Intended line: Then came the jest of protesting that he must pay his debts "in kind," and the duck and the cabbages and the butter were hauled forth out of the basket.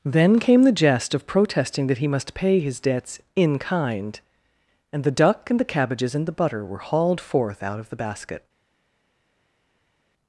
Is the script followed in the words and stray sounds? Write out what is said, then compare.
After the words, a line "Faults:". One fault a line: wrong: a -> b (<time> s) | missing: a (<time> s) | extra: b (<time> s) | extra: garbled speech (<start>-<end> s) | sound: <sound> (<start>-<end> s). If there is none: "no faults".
Then came the jest of protesting that he must pay his debts "in kind," and the duck and the cabbages and the butter were hauled forth out of the basket.
Faults:
no faults